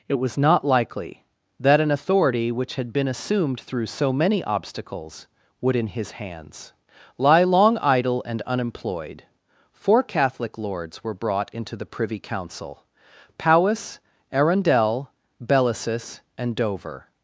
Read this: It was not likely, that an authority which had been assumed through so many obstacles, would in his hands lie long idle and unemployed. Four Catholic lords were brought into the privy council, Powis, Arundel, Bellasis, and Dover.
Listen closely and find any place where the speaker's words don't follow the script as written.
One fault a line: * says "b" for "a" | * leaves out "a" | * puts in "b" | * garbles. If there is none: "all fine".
all fine